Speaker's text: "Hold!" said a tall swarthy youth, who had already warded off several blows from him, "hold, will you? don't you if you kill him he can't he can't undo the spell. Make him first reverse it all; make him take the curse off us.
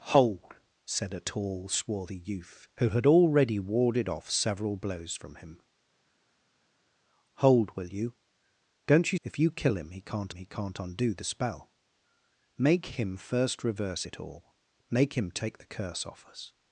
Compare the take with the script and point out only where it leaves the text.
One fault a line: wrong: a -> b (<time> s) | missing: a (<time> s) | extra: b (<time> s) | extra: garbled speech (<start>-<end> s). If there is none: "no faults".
no faults